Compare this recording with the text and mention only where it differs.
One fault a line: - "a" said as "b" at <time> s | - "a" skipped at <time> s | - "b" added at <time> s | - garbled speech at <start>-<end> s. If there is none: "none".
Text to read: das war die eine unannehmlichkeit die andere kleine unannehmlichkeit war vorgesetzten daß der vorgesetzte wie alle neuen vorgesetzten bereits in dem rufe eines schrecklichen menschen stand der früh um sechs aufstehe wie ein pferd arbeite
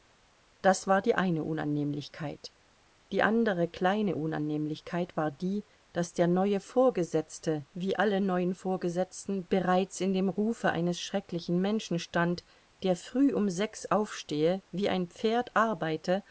- "vorgesetzten" said as "die" at 5.3 s
- "neue" added at 6.3 s